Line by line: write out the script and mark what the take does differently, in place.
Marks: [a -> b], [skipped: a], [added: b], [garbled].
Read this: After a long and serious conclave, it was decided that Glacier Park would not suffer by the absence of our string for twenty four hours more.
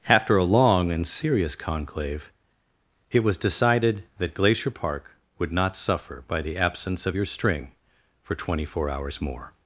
After a long and serious conclave, it was decided that Glacier Park would not suffer by the absence of [our -> your] string for twenty four hours more.